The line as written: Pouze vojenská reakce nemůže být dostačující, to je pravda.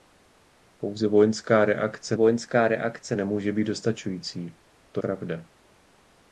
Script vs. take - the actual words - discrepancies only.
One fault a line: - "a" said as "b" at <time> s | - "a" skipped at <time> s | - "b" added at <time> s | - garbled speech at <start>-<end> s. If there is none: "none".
- "vojenská reakce" added at 2.1 s
- "je" skipped at 5.0 s